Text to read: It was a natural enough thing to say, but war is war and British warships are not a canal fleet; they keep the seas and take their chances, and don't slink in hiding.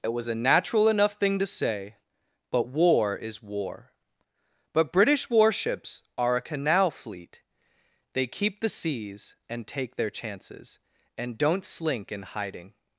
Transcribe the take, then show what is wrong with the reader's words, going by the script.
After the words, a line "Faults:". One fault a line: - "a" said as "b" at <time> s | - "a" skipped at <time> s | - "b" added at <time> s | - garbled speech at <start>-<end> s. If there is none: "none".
It was a natural enough thing to say, but war is war but British warships are a canal fleet; they keep the seas and take their chances, and don't slink in hiding.
Faults:
- "and" said as "but" at 4.7 s
- "not" skipped at 6.4 s